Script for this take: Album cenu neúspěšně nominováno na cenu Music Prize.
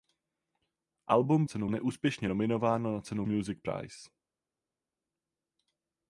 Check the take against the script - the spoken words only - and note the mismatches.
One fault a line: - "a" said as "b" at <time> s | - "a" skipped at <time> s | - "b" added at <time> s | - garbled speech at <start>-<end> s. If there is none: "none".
none